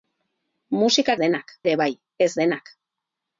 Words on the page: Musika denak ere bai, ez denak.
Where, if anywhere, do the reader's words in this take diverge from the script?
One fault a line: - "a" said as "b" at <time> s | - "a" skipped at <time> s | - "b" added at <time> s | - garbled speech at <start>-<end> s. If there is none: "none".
none